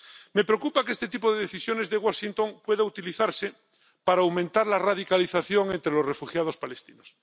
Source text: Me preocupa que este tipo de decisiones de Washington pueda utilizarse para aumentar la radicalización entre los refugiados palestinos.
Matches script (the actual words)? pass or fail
pass